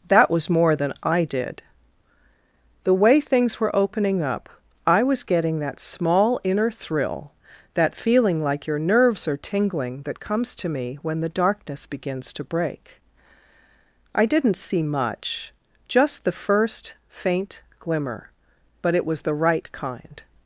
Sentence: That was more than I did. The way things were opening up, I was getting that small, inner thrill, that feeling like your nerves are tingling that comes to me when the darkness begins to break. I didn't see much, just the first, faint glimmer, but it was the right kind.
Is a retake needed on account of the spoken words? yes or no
no